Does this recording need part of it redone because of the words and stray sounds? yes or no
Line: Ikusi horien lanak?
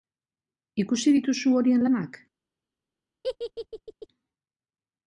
yes